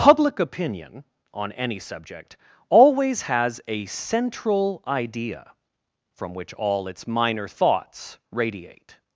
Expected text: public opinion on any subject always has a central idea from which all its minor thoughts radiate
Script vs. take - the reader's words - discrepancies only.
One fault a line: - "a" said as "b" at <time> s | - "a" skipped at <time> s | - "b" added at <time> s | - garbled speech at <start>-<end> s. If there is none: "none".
none